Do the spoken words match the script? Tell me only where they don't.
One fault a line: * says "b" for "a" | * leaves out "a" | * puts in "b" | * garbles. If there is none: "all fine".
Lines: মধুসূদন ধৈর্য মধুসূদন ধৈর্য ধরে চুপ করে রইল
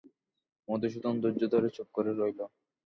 * leaves out "মধুসূদন ধৈর্য"